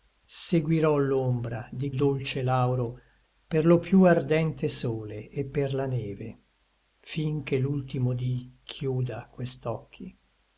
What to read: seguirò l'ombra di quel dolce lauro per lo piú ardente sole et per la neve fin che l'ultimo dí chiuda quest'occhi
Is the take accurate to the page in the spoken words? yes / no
no